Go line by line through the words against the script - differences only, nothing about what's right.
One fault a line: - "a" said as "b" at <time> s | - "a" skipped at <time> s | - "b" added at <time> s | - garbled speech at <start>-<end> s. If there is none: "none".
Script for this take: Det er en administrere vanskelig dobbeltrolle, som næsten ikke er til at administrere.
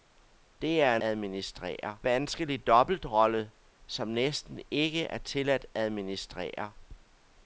none